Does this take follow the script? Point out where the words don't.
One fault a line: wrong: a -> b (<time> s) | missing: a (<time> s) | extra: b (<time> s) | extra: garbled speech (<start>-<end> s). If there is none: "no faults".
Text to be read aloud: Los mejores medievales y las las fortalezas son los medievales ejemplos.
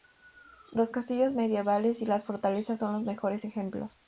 wrong: mejores -> castillos (0.9 s)
missing: las (2.2 s)
wrong: medievales -> mejores (3.0 s)